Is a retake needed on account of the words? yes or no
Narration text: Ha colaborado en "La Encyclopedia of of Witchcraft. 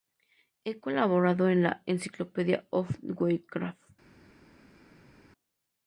yes